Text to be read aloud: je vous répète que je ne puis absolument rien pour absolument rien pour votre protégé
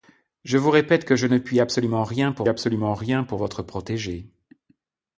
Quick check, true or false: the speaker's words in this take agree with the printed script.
true